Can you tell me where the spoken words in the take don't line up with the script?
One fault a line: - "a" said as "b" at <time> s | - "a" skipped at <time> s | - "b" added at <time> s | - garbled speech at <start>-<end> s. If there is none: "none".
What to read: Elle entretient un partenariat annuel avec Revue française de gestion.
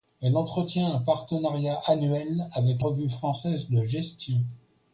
none